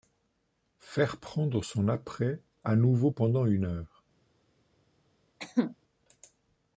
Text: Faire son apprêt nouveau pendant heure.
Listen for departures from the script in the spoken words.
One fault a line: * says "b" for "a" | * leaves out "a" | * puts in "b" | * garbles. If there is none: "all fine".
* puts in "prendre"
* puts in "à"
* puts in "une"